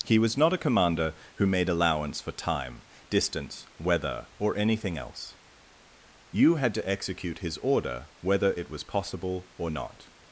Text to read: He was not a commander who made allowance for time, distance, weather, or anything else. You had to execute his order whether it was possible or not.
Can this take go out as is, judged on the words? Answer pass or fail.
pass